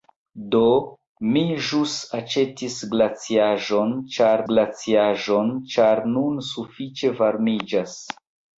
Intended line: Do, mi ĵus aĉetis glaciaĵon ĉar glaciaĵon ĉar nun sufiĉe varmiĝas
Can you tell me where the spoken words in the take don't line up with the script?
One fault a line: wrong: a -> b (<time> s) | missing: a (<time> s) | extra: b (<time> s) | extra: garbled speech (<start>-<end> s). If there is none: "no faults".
no faults